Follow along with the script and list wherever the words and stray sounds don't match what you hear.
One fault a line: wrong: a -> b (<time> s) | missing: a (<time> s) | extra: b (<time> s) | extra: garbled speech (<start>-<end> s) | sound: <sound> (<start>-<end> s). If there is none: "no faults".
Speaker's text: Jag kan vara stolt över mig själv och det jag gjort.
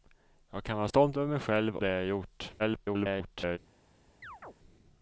missing: och (1.8 s)
extra: garbled speech (2.6-3.6 s)
sound: chirp (4.2-4.5 s)